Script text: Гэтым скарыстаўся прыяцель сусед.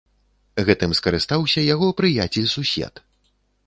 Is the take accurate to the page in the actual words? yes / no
no